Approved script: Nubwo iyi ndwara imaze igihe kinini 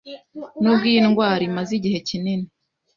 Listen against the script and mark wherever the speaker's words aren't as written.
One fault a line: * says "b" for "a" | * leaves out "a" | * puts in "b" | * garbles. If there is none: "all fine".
all fine